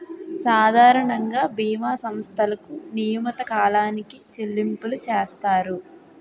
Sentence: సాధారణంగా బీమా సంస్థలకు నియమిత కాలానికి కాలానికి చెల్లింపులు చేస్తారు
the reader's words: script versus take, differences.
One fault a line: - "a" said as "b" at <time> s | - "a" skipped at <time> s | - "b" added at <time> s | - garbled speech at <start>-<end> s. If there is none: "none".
- "కాలానికి" skipped at 4.2 s